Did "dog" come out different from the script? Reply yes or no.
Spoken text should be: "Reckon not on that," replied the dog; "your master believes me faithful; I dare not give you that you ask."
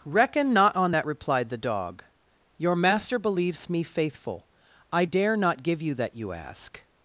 no